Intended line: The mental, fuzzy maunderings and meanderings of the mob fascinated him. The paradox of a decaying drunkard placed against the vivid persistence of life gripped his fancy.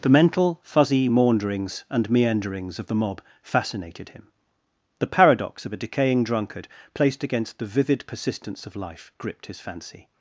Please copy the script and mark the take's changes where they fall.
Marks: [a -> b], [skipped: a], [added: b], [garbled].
The mental, fuzzy maunderings and meanderings of the mob fascinated him. The paradox of a decaying drunkard placed against the vivid persistence of life gripped his fancy.